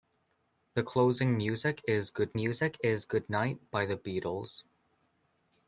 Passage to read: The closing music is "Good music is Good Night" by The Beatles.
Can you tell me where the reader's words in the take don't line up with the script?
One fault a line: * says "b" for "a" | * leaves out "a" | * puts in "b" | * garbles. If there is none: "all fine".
all fine